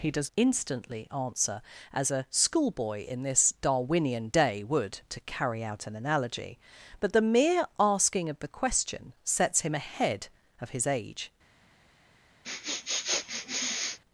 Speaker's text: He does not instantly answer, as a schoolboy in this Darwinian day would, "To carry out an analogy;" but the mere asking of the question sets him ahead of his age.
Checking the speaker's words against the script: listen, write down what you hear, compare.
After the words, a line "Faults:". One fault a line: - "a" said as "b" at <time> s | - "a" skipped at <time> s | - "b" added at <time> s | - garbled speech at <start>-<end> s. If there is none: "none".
He does instantly answer, as a schoolboy in this Darwinian day would, "To carry out an analogy;" but the mere asking of the question sets him ahead of his age.
Faults:
- "not" skipped at 0.3 s